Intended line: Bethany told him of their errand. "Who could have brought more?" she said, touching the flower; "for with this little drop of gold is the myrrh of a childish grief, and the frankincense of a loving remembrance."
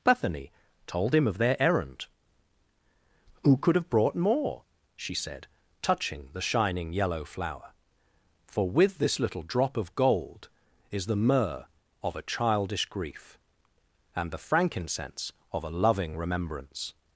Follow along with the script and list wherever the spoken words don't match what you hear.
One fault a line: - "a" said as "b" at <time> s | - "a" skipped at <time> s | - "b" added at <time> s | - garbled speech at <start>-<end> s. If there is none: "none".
- "shining yellow" added at 6.4 s